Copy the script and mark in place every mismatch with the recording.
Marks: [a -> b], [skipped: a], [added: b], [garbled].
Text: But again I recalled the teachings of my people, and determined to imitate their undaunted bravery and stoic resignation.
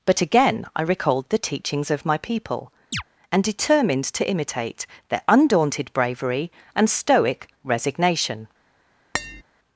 But again I recalled the teachings of my people, and determined to imitate their undaunted bravery and stoic resignation.